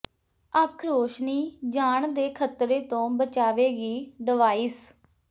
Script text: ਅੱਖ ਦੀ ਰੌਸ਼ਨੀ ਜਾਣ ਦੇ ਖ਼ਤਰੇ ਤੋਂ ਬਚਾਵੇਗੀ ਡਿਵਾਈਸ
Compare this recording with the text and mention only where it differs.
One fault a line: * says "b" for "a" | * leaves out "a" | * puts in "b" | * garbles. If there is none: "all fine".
* leaves out "ਦੀ"